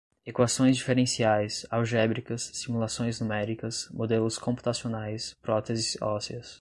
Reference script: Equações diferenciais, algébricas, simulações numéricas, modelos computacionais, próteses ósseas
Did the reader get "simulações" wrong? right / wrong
right